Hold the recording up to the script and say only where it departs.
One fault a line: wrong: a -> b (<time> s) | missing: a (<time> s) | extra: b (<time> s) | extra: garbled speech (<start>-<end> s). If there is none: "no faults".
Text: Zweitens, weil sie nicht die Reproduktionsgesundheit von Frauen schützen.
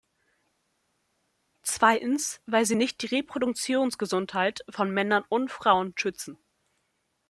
extra: Männern und (4.9 s)